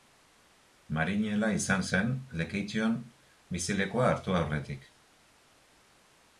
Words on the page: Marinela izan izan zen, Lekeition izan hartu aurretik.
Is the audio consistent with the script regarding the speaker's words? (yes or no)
no